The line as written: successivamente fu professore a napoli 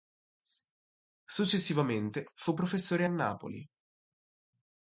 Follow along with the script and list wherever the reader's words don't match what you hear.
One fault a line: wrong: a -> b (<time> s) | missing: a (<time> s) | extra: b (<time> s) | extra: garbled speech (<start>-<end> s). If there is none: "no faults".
no faults